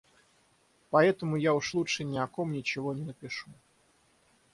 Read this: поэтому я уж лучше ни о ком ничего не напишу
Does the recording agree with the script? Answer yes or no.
yes